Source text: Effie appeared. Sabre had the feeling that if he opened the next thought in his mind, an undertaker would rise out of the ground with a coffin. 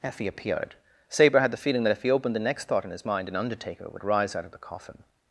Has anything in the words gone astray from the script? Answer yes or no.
yes